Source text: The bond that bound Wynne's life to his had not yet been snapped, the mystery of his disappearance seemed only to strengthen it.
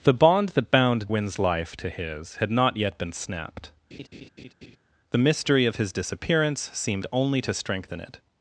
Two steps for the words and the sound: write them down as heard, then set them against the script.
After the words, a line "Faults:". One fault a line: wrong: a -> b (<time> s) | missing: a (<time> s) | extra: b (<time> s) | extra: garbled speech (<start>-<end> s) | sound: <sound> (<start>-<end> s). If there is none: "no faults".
The bond that bound Wynne's life to his had not yet been snapped, the mystery of his disappearance seemed only to strengthen it.
Faults:
sound: laugh (3.9-4.8 s)